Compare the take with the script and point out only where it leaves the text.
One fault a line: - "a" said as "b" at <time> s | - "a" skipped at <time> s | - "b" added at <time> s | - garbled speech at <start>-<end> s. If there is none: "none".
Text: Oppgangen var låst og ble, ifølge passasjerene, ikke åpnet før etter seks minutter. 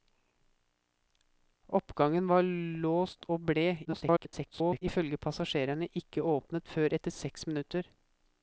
- garbled speech at 3.8-4.8 s